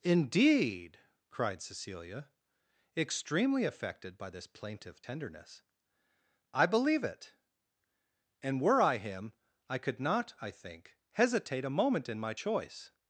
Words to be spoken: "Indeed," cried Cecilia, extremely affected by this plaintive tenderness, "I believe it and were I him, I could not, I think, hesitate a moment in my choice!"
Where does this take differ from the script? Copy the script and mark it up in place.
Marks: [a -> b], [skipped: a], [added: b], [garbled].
"Indeed," cried Cecilia, extremely affected by this plaintive tenderness, "I believe it and were I him, I could not, I think, hesitate a moment in my choice!"